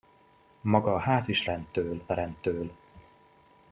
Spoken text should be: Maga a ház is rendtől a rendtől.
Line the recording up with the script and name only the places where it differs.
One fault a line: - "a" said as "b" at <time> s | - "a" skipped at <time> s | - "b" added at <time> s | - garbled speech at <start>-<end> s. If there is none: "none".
none